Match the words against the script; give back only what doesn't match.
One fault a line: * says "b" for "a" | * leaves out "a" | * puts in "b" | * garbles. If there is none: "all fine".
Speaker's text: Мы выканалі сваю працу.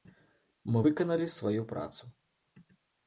all fine